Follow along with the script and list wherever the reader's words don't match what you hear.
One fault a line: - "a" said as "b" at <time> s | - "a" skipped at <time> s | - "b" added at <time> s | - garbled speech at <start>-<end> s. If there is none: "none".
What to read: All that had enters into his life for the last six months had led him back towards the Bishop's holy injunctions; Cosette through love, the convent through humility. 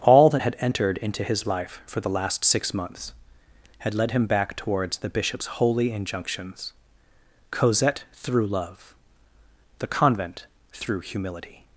- "enters" said as "entered" at 0.6 s